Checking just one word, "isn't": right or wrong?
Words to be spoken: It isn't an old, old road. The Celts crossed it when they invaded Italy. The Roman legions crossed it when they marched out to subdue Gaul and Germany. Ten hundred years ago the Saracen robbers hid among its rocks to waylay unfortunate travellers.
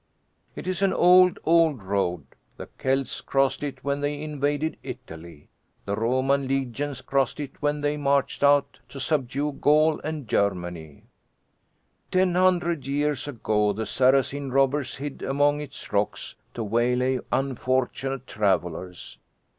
wrong